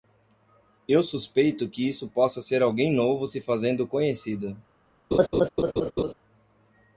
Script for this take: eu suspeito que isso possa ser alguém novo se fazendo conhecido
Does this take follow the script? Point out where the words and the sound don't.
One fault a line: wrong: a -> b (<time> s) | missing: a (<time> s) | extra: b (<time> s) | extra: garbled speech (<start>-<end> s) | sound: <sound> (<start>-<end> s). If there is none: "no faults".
sound: laugh (5.1-6.1 s)